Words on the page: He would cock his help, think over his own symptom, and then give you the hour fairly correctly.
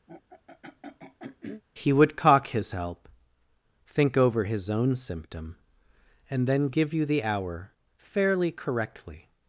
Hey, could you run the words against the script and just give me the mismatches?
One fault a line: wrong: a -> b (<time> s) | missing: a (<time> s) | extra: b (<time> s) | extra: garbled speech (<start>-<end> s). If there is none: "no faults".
no faults